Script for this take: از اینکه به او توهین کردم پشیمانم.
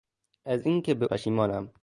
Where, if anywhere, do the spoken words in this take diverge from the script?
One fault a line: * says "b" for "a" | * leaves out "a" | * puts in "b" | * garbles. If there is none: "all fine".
* leaves out "او توهین کردم"